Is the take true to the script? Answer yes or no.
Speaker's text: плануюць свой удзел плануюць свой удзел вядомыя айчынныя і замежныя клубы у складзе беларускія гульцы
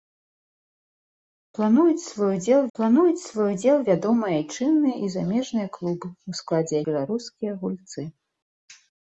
yes